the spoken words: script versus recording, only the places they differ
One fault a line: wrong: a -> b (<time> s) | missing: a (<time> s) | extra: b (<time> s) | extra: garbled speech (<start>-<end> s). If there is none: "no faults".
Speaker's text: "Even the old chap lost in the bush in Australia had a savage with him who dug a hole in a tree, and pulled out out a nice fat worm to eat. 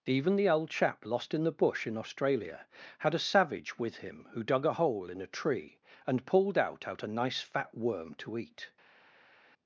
no faults